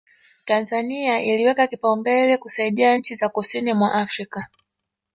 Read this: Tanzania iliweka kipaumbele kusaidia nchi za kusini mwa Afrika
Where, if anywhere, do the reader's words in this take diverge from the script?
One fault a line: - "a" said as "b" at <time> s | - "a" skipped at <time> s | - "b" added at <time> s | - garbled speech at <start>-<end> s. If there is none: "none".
none